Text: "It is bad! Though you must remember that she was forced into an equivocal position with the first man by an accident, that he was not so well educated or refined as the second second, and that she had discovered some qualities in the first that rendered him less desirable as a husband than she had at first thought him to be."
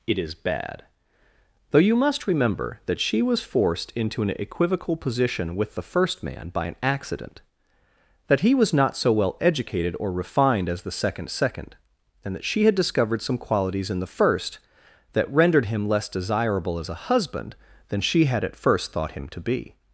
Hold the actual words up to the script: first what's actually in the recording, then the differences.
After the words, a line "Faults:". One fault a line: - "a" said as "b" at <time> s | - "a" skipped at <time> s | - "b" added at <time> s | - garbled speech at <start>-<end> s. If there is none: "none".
"It is bad! Though you must remember that she was forced into an equivocal position with the first man by an accident, that he was not so well educated or refined as the second second, and that she had discovered some qualities in the first that rendered him less desirable as a husband than she had at first thought him to be."
Faults:
none